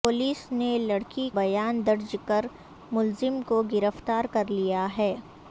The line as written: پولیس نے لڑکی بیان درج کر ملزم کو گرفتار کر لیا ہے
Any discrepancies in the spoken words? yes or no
no